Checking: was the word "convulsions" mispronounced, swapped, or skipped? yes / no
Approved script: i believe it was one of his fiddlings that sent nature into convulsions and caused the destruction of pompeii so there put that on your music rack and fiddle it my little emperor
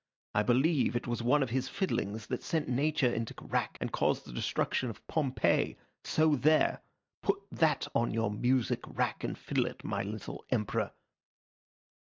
yes